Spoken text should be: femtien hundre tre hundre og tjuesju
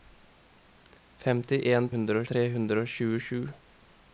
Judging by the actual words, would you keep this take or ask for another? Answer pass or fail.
pass